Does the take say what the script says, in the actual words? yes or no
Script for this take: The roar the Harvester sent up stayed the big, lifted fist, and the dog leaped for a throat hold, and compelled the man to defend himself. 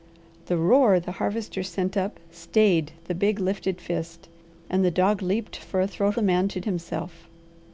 no